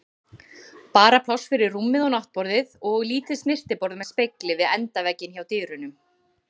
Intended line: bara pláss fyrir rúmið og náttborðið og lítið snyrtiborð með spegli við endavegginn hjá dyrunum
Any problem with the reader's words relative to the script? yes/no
no